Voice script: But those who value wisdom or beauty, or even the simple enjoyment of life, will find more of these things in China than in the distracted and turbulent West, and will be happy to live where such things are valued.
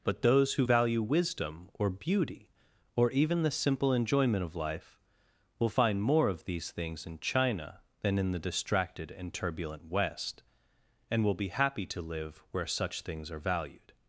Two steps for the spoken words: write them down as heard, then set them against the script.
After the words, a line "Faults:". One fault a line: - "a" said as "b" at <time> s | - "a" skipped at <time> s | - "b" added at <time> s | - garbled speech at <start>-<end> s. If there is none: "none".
But those who value wisdom or beauty, or even the simple enjoyment of life, will find more of these things in China than in the distracted and turbulent West, and will be happy to live where such things are valued.
Faults:
none